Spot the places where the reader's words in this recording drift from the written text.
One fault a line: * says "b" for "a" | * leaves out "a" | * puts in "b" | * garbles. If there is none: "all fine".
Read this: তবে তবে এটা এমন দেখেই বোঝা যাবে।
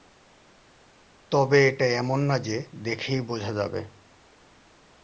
* leaves out "তবে"
* puts in "না যে"